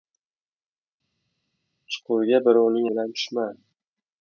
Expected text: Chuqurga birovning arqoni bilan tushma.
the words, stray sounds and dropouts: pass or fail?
fail